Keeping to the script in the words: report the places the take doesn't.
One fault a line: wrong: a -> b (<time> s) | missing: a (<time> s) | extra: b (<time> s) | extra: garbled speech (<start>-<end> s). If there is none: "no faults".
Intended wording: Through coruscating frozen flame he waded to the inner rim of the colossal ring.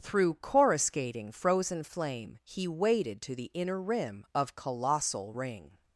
missing: the (4.6 s)